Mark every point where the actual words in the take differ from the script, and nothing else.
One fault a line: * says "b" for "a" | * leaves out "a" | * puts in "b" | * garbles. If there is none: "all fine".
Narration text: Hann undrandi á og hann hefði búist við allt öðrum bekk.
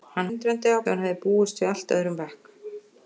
all fine